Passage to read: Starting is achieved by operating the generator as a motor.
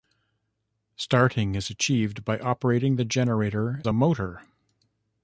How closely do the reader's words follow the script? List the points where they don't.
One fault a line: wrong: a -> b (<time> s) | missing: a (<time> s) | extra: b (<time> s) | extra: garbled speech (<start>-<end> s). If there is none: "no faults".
missing: as (3.9 s)